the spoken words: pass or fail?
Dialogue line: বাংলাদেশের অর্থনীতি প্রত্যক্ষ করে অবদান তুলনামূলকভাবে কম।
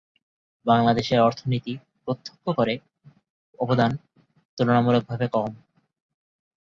pass